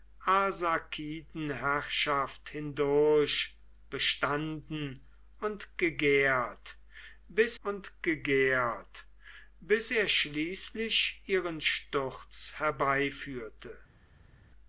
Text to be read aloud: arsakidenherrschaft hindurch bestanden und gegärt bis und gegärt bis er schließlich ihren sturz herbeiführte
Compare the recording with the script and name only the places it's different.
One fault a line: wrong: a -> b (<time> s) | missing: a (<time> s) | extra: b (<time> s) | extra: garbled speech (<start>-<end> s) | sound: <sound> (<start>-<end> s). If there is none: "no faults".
no faults